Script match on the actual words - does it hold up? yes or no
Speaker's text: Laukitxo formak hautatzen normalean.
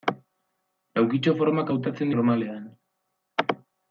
yes